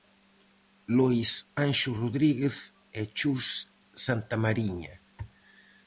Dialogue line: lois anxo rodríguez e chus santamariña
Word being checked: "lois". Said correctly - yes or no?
yes